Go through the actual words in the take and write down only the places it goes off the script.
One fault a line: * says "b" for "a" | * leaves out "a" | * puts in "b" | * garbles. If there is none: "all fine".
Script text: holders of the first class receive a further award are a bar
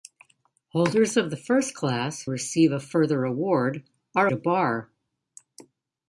all fine